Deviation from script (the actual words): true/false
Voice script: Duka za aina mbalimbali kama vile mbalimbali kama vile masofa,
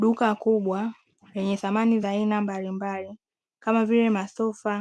true